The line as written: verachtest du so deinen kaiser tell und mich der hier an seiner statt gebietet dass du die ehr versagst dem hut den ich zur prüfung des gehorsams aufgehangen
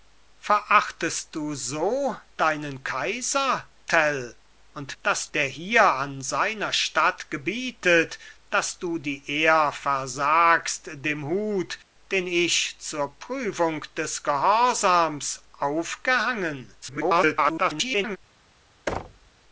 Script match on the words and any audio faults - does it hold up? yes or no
no